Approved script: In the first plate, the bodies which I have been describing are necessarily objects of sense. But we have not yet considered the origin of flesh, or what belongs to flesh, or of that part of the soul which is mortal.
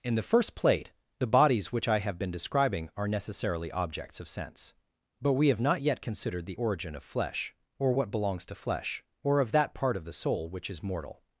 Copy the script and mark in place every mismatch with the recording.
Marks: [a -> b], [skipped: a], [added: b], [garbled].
In the first plate, the bodies which I have been describing are necessarily objects of sense. But we have not yet considered the origin of flesh, or what belongs to flesh, or of that part of the soul which is mortal.